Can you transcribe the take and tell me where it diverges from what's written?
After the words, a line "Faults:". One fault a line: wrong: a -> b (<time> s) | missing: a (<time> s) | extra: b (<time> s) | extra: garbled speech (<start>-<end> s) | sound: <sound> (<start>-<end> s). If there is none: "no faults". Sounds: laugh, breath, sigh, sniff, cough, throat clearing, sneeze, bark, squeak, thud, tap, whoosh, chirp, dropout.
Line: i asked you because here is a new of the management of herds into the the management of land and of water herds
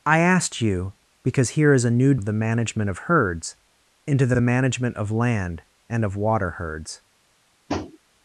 i asked you because here is a new of the management of herds into the the management of land and of water herds
Faults:
sound: tap (7.7-8.0 s)